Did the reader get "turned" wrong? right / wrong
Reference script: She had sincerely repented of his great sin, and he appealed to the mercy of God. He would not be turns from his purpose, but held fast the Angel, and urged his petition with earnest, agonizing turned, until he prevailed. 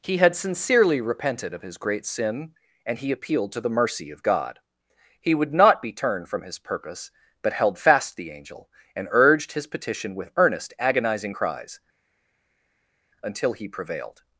wrong